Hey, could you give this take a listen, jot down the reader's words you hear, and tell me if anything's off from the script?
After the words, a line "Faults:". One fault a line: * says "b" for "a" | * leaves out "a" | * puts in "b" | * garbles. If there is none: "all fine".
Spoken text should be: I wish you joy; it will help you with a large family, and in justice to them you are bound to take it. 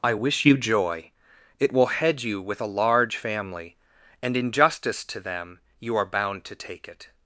I wish you joy; it will head you with a large family, and in justice to them you are bound to take it.
Faults:
* says "head" for "help"